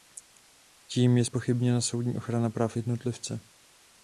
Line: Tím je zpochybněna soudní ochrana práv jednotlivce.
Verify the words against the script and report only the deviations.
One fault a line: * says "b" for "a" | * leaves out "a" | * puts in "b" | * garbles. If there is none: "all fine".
all fine